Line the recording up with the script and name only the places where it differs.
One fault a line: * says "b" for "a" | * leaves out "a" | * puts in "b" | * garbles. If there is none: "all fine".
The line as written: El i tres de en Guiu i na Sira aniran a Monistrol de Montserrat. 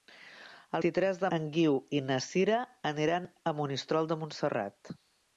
all fine